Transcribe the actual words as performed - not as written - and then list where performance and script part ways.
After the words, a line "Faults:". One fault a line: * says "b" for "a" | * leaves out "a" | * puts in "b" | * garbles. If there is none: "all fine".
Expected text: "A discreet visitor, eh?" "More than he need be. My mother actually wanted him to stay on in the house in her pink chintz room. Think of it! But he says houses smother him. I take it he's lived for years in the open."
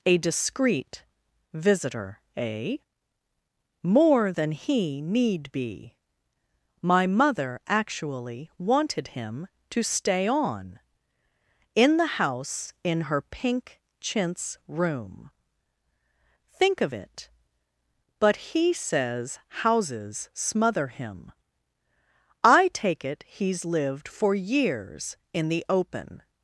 "A discreet visitor, eh?" "More than he need be. My mother actually wanted him to stay on in the house in her pink chintz room. Think of it! But he says houses smother him. I take it he's lived for years in the open."
Faults:
all fine